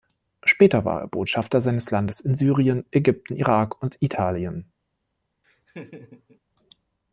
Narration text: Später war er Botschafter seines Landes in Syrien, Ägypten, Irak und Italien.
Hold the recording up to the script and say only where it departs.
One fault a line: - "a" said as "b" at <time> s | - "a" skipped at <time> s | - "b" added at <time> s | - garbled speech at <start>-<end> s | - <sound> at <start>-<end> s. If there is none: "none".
- laugh at 5.4-6.4 s